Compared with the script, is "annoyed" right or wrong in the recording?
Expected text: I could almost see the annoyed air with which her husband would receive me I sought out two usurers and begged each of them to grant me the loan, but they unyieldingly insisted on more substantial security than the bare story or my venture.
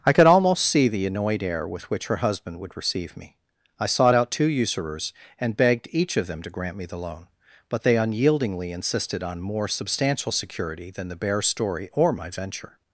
right